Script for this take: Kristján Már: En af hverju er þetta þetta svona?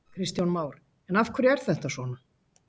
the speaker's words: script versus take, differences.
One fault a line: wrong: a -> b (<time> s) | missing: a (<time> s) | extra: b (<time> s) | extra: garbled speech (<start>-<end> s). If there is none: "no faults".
missing: þetta (1.9 s)